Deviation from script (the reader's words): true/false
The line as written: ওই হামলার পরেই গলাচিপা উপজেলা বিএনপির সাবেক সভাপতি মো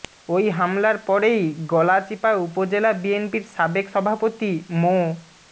false